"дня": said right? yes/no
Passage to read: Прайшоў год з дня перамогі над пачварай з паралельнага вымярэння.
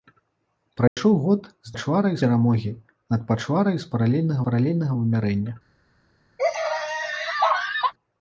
no